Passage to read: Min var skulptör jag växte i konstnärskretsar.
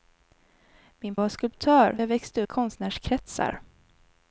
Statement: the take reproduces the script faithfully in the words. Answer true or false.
true